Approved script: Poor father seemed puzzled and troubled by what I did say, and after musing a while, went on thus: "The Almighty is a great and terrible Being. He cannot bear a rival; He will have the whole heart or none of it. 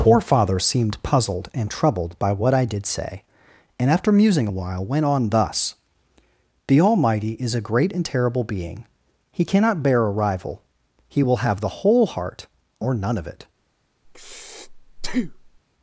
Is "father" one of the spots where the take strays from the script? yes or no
no